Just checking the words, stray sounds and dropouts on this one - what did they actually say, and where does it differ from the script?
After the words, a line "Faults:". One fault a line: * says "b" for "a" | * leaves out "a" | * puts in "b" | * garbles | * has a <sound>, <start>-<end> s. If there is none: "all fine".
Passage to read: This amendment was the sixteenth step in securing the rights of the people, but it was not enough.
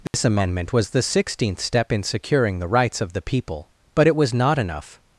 This amendment was the sixteenth step in securing the rights of the people, but it was not enough.
Faults:
* has a dropout, 0.1-0.1 s